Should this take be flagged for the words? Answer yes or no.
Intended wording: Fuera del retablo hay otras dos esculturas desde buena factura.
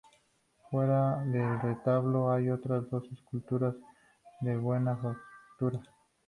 yes